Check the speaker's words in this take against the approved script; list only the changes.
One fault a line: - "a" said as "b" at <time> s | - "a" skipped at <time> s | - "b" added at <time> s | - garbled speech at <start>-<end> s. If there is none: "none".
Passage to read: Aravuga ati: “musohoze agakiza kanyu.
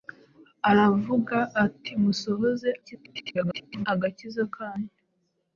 - garbled speech at 2.8-3.9 s